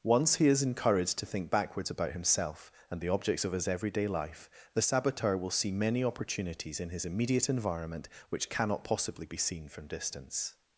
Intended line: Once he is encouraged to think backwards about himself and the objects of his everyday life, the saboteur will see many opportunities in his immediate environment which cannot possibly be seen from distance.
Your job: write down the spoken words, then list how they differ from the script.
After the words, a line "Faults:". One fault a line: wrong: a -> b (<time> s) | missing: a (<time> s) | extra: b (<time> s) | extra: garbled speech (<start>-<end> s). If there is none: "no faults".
Once he is encouraged to think backwards about himself and the objects of his everyday life, the saboteur will see many opportunities in his immediate environment which cannot possibly be seen from distance.
Faults:
no faults